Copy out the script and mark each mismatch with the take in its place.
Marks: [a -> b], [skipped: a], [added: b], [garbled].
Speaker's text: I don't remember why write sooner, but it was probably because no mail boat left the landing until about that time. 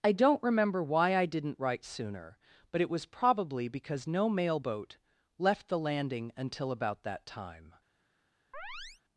I don't remember why [added: I didn't] write sooner, but it was probably because no mail boat left the landing until about that time.